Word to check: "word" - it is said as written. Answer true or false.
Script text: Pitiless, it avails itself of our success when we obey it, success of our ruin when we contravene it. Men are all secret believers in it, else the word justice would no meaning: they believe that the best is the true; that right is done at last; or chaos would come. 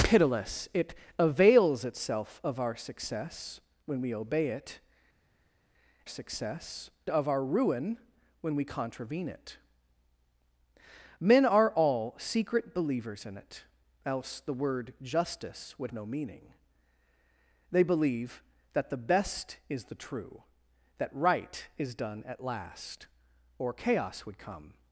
true